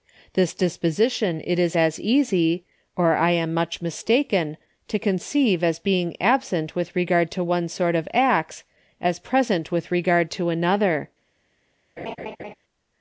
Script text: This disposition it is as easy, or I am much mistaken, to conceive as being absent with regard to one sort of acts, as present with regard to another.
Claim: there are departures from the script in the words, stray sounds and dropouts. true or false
true